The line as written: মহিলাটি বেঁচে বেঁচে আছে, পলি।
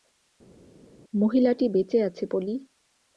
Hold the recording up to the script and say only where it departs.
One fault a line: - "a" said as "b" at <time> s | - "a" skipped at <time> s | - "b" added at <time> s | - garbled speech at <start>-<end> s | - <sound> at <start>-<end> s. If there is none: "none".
- "বেঁচে" skipped at 2.0 s